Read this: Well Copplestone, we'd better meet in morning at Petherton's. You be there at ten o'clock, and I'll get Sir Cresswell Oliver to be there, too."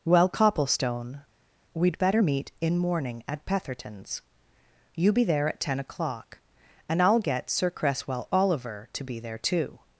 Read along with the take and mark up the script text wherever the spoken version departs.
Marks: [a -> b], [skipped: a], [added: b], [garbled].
Well Copplestone, we'd better meet in morning at Petherton's. You be there at ten o'clock, and I'll get Sir Cresswell Oliver to be there, too."